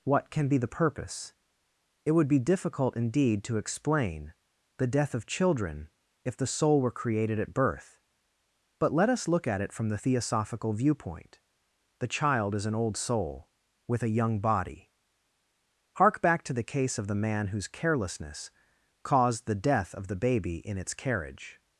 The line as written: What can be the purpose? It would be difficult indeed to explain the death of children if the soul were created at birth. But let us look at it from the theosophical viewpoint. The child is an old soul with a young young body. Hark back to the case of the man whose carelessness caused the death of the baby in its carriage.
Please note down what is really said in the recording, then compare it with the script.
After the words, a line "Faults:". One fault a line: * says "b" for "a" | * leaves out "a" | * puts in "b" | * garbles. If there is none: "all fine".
What can be the purpose? It would be difficult indeed to explain the death of children if the soul were created at birth. But let us look at it from the theosophical viewpoint. The child is an old soul with a young body. Hark back to the case of the man whose carelessness caused the death of the baby in its carriage.
Faults:
* leaves out "young"